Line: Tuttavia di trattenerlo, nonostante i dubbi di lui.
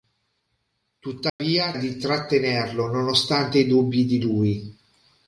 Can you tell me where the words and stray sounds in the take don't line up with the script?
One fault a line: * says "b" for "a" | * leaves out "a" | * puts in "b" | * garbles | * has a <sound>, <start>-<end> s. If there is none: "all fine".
* has a dropout, 1.3-1.4 s